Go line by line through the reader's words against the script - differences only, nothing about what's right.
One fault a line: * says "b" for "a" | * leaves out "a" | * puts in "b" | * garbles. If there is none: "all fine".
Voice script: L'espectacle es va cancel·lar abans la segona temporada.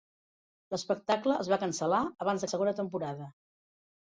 all fine